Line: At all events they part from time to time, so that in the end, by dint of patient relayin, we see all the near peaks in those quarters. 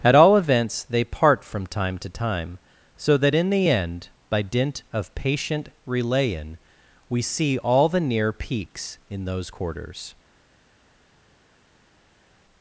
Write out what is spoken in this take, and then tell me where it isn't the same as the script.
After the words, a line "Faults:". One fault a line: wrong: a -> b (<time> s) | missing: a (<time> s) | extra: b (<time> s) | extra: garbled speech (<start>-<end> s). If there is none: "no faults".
At all events they part from time to time, so that in the end, by dint of patient relayin, we see all the near peaks in those quarters.
Faults:
no faults